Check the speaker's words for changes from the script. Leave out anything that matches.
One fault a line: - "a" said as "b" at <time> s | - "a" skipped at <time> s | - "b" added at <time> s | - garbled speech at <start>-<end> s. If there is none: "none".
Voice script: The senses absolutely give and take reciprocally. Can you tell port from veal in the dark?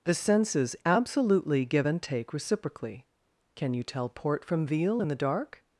none